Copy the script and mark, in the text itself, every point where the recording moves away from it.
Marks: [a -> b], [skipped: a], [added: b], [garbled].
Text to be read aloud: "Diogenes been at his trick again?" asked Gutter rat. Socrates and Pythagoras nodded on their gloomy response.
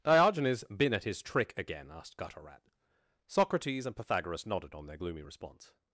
"Diogenes been at his trick again?" asked Gutter rat. Socrates and Pythagoras nodded on their gloomy response.